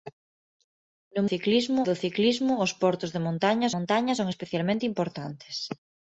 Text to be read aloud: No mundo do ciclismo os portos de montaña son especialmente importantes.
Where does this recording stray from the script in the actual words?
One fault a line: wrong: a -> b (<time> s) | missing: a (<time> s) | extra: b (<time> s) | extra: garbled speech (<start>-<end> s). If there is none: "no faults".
wrong: mundo -> ciclismo (1.3 s)
extra: montaña (3.7 s)